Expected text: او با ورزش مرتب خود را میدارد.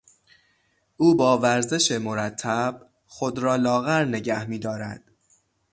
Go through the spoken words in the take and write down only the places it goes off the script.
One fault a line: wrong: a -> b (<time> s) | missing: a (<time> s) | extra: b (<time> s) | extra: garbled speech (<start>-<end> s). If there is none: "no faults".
extra: لاغر نگه (3.6 s)